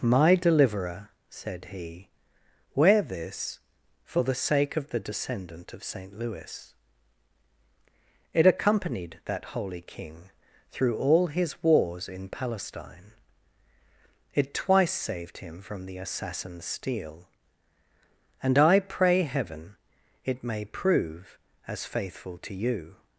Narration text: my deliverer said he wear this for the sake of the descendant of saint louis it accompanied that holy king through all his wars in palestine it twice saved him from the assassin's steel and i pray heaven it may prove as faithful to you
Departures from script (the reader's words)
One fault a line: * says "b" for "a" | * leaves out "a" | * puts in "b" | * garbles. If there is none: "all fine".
all fine